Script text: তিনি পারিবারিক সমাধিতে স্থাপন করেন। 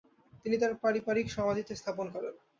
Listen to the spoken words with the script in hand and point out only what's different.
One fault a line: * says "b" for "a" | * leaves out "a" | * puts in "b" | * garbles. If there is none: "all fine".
* puts in "তার"